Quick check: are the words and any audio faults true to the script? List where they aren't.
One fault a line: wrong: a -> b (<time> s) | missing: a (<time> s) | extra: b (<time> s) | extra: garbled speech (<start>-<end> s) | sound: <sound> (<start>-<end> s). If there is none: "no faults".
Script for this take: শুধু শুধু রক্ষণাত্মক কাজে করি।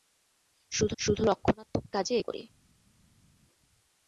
no faults